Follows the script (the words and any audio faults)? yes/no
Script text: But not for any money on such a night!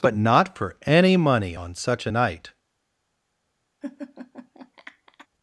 no